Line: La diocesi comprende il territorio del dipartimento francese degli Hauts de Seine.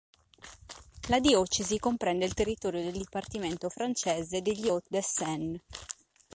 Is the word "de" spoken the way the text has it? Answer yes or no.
yes